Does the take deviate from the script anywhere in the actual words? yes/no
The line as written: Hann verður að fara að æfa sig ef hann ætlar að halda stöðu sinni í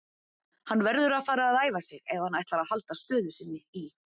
no